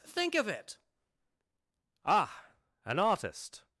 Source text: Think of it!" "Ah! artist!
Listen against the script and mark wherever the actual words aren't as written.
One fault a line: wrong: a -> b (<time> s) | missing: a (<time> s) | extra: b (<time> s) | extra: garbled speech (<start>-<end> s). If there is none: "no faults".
extra: an (2.8 s)